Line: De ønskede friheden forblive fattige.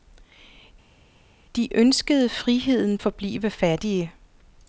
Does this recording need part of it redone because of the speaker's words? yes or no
no